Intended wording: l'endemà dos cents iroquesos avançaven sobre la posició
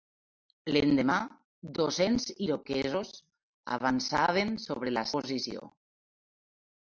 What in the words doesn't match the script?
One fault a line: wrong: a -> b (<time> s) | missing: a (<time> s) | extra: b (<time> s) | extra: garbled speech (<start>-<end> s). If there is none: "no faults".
no faults